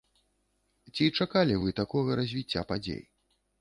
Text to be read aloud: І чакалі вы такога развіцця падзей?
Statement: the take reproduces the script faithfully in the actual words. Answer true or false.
false